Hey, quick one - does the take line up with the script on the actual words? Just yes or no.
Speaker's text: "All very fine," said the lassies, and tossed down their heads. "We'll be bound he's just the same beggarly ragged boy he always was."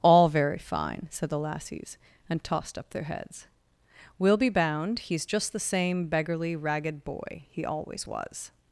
no